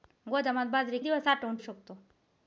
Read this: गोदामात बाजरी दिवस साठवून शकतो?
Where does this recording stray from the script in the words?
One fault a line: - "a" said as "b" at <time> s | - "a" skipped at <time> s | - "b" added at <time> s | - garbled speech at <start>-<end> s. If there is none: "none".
none